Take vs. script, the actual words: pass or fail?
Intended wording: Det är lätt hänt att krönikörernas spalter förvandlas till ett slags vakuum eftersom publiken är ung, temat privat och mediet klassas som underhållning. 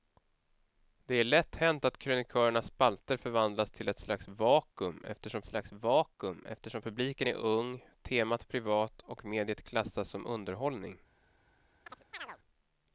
fail